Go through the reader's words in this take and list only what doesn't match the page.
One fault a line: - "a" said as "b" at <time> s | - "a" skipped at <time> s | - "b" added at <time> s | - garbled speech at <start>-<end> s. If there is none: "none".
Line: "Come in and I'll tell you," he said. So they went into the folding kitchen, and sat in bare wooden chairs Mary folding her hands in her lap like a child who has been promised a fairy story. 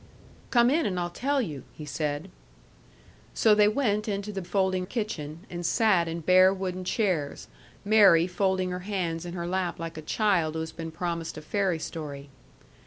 none